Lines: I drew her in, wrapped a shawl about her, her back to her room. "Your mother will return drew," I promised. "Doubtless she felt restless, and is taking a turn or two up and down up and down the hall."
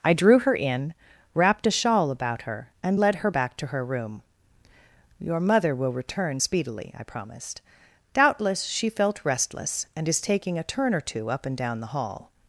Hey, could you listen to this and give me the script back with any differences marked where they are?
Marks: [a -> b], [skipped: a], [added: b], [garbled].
I drew her in, wrapped a shawl about her, [added: and led] her back to her room. "Your mother will return [drew," -> speedily] I promised. "Doubtless she felt restless, and is taking a turn or two up and down [skipped: up and down] the hall."